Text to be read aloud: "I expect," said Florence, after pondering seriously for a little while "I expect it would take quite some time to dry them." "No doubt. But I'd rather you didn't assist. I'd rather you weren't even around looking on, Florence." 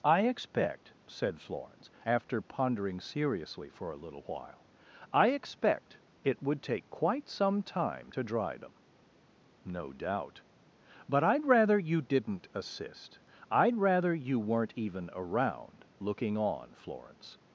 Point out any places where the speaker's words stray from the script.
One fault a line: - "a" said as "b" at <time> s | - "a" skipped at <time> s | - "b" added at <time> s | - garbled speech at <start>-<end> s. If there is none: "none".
none